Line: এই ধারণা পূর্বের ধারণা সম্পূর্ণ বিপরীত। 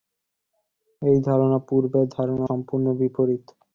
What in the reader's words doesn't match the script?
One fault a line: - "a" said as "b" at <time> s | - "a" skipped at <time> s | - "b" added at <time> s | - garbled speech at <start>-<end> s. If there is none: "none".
none